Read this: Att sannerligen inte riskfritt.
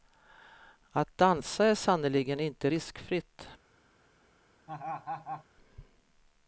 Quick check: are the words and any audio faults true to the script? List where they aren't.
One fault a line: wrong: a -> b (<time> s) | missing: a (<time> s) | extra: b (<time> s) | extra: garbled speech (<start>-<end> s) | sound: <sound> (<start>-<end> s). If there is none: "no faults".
extra: dansa är (1.2 s)
sound: laugh (4.7-5.4 s)